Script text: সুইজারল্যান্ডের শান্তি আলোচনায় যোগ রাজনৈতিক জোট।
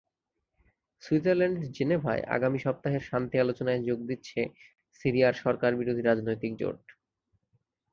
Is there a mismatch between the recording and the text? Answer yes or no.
yes